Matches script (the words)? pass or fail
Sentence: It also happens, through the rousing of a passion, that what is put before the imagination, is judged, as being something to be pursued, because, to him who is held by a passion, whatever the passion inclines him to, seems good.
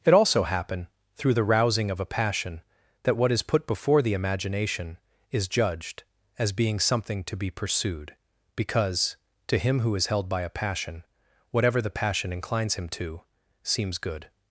fail